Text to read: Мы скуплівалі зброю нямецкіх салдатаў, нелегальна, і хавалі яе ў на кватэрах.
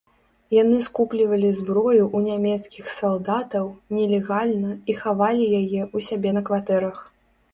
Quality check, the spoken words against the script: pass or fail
fail